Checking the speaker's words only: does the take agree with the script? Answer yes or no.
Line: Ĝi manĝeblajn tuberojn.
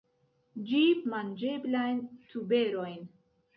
yes